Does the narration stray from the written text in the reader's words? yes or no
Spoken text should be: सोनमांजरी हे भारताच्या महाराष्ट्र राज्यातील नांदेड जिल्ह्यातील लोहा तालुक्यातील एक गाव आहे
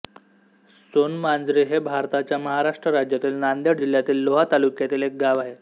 no